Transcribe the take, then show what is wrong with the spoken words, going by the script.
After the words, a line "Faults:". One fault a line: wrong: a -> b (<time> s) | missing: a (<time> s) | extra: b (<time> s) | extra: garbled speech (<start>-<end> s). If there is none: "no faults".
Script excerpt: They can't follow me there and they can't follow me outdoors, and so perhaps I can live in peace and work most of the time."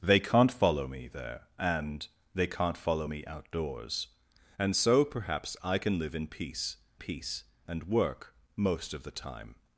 They can't follow me there and they can't follow me outdoors, and so perhaps I can live in peace peace and work most of the time."
Faults:
extra: peace (7.0 s)